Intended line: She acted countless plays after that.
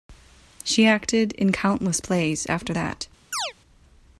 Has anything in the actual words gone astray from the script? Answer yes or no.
yes